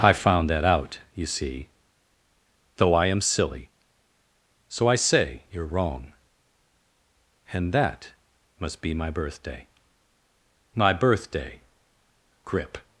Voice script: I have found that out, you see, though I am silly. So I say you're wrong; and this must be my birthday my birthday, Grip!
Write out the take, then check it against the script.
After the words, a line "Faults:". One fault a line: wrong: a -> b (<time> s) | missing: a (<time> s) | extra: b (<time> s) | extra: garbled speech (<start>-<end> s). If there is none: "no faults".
I found that out, you see, though I am silly. So I say you're wrong; and that must be my birthday my birthday, Grip!
Faults:
missing: have (0.1 s)
wrong: this -> that (7.7 s)